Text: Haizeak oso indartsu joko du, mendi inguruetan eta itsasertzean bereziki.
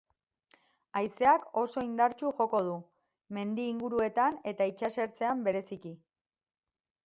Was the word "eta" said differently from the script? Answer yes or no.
no